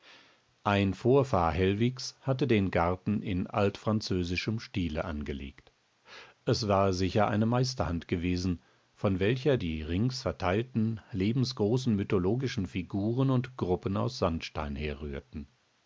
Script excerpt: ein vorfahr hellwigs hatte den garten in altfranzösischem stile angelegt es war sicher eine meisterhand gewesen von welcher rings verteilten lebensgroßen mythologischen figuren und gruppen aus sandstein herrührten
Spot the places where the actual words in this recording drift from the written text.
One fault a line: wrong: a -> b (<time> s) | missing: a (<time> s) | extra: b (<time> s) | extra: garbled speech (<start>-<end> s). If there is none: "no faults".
extra: die (9.6 s)